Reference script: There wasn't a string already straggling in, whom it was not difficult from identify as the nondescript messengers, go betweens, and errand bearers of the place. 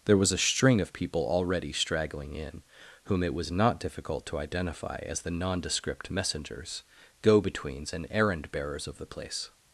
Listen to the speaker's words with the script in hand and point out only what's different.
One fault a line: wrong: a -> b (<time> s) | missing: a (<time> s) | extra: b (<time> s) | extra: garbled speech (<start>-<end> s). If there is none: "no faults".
wrong: wasn't -> was (0.2 s)
extra: of people (0.8 s)
wrong: from -> to (4.3 s)